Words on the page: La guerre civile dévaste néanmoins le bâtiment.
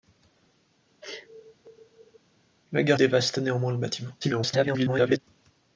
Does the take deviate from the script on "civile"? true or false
true